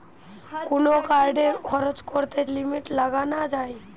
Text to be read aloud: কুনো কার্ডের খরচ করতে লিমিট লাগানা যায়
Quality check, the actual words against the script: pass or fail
pass